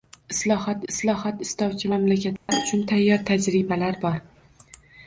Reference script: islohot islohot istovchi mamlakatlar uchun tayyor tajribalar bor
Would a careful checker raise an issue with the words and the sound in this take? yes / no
yes